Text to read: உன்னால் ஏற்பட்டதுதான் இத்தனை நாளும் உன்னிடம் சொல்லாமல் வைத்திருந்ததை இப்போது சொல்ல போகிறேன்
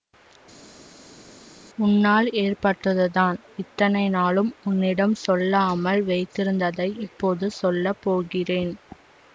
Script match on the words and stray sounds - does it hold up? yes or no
yes